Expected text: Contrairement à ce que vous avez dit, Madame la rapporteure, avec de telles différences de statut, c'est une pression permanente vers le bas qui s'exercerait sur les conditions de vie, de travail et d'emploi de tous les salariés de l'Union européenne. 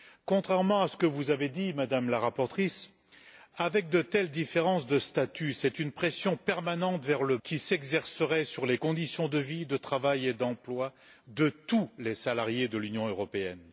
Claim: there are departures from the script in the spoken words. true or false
true